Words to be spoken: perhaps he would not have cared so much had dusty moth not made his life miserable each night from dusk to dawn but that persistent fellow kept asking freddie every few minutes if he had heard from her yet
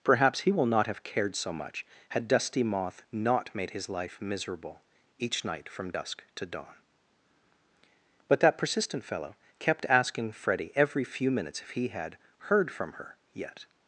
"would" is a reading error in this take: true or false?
true